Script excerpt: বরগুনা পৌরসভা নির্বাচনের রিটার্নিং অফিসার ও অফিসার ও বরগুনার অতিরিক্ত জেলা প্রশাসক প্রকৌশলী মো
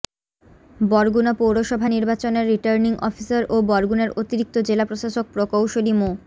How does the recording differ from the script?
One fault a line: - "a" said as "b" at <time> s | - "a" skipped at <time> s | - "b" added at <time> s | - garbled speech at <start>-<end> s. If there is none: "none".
- "অফিসার ও" skipped at 3.7 s